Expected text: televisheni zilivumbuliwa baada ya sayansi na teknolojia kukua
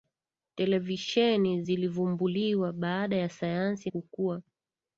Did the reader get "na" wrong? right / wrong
wrong